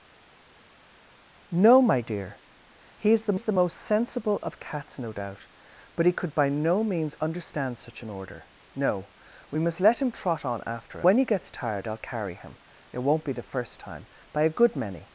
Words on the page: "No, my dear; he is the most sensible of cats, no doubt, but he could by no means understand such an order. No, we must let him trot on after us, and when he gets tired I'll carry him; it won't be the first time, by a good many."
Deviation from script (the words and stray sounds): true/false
true